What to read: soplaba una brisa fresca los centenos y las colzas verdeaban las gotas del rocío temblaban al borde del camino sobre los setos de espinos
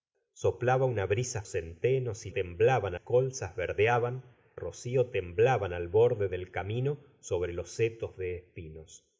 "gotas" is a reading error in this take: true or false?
true